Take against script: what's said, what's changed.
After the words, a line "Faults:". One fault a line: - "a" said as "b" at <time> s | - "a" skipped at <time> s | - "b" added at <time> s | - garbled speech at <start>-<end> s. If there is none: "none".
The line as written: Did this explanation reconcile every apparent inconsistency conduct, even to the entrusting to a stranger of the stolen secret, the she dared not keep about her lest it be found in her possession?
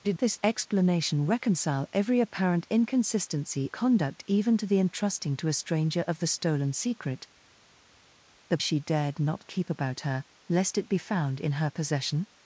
Did this explanation reconcile every apparent inconsistency conduct, even to the entrusting to a stranger of the stolen secret, the she dared not keep about her lest it be found in her possession?
Faults:
none